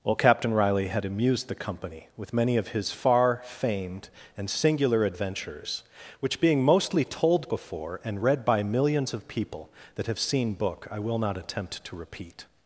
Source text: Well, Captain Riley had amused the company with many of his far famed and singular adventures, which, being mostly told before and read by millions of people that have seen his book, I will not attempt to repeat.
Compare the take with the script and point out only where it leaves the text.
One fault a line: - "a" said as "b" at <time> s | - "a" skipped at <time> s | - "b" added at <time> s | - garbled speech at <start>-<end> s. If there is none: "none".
- "his" skipped at 10.5 s